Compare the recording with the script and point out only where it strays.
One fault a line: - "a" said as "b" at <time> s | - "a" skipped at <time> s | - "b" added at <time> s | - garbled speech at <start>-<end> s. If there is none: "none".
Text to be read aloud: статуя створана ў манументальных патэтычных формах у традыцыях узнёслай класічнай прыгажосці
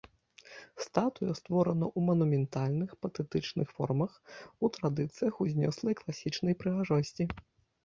none